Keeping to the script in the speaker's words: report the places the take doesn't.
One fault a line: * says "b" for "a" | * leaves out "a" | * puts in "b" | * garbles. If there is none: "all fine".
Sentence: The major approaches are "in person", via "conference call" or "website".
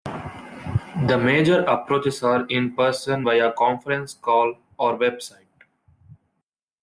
all fine